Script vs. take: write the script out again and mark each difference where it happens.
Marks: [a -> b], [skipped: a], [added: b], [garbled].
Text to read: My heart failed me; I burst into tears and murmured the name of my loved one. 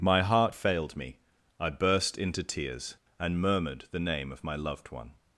My heart failed me; I burst into tears and murmured the name of my loved one.